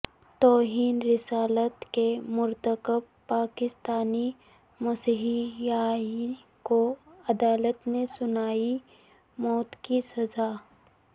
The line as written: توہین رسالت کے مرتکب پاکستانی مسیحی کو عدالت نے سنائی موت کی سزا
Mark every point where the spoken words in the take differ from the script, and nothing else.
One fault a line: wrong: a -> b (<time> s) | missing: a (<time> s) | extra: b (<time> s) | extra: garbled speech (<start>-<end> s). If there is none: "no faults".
no faults